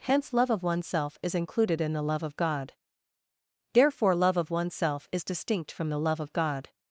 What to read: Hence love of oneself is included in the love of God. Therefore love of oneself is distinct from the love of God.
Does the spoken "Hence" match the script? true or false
true